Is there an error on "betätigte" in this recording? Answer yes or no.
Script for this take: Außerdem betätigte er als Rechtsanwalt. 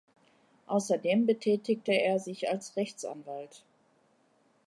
no